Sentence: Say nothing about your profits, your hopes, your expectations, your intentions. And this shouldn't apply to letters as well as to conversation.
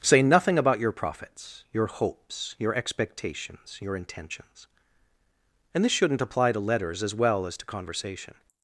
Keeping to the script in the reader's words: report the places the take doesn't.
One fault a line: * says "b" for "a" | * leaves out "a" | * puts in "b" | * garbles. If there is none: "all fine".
all fine